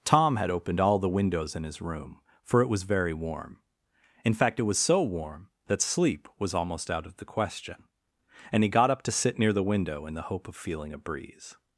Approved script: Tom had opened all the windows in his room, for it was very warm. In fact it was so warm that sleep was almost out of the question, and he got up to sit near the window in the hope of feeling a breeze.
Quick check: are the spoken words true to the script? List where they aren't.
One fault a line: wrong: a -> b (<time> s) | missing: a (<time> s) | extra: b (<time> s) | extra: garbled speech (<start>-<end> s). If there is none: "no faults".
no faults